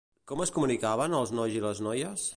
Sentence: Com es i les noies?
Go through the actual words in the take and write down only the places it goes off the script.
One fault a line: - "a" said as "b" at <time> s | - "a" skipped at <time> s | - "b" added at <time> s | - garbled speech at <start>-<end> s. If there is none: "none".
- "comunicaven els nois" added at 0.6 s